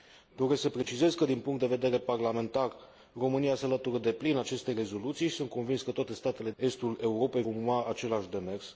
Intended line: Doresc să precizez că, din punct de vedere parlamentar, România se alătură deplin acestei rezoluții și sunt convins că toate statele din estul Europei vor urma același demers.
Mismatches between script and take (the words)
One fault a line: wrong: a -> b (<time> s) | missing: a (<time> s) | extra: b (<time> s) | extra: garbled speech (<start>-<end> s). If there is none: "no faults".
missing: din (6.5 s)
missing: vor (7.4 s)